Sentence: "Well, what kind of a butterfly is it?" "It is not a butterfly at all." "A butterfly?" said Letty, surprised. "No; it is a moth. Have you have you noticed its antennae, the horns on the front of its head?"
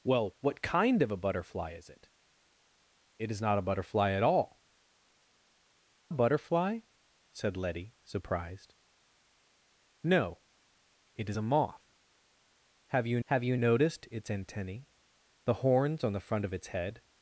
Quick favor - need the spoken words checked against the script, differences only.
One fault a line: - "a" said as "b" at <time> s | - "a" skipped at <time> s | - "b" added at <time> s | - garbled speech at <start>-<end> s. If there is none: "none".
none